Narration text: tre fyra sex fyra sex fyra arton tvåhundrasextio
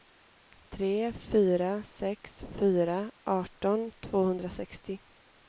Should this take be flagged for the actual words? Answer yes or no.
yes